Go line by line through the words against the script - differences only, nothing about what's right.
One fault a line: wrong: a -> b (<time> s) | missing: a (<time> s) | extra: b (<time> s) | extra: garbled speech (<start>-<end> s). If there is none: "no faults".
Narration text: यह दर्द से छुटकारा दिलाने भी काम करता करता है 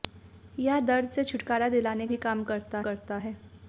no faults